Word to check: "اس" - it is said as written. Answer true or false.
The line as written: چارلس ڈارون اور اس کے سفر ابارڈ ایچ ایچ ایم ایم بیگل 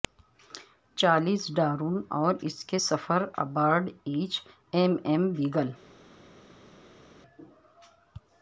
true